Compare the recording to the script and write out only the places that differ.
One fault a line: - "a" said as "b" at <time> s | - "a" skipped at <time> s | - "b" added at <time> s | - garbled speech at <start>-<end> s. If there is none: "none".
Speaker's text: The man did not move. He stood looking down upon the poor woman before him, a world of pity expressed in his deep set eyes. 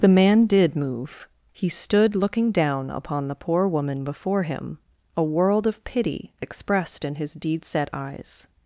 - "not" skipped at 0.8 s
- "deep" said as "deed" at 7.3 s